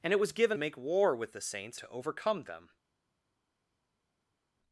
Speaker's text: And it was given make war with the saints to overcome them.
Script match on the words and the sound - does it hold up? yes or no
yes